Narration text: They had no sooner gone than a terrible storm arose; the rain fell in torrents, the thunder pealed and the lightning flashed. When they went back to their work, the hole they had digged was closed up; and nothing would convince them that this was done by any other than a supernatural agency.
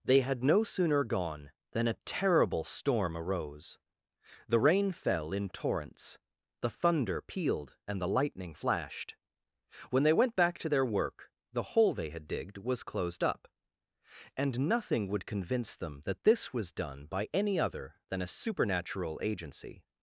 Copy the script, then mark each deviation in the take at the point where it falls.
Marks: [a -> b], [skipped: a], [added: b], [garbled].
They had no sooner gone than a terrible storm arose; the rain fell in torrents, the thunder pealed and the lightning flashed. When they went back to their work, the hole they had digged was closed up; and nothing would convince them that this was done by any other than a supernatural agency.